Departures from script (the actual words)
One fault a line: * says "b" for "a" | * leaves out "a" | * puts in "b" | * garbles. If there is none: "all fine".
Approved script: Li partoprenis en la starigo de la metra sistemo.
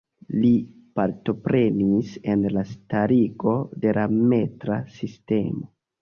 all fine